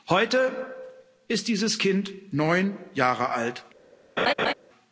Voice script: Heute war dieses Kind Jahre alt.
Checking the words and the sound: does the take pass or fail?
fail